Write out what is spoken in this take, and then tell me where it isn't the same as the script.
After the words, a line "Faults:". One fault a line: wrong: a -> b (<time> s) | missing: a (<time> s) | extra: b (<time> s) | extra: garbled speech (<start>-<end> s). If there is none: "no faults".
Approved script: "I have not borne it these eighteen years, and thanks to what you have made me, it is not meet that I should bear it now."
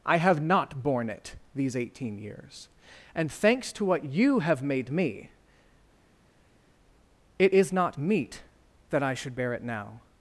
"I have not borne it these eighteen years, and thanks to what you have made me, it is not meet that I should bear it now."
Faults:
no faults